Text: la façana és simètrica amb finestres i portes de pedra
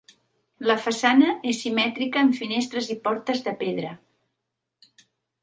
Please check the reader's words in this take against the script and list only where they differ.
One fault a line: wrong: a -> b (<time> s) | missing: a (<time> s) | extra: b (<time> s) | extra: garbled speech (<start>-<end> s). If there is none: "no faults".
no faults